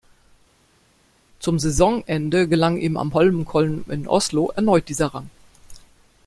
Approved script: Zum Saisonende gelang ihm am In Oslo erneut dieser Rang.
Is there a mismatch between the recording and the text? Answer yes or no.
yes